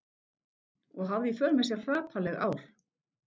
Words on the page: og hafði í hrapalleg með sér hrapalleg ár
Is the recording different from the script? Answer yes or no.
yes